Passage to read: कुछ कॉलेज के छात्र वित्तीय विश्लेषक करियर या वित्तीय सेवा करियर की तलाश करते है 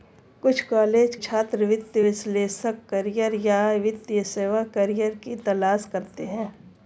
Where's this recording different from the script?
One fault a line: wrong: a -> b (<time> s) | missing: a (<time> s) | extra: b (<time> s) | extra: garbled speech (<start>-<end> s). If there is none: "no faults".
missing: के (1.1 s)